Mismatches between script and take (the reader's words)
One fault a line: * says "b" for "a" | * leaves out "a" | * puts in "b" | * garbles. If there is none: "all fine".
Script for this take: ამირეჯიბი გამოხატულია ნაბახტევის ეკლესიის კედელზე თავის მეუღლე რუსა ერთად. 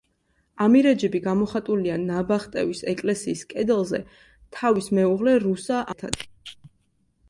all fine